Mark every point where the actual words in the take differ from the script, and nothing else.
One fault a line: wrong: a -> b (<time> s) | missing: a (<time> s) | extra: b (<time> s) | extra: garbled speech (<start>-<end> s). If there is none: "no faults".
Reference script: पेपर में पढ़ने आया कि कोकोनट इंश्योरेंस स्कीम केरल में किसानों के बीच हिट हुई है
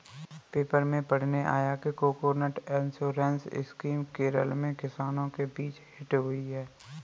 no faults